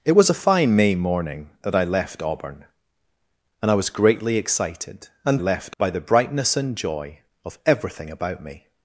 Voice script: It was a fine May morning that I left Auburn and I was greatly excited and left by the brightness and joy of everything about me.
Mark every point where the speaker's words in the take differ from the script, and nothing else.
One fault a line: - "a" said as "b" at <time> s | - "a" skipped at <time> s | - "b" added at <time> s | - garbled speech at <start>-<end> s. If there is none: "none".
none